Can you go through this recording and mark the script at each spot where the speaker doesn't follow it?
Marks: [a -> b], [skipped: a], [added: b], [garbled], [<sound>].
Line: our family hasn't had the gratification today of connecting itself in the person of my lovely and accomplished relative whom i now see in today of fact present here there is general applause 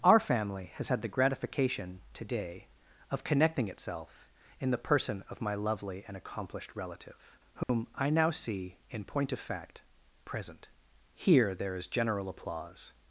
our family [hasn't -> has] had the gratification today of connecting itself in the person of my lovely and accomplished relative whom [dropout] i now see in [today -> point] of fact present here there is general applause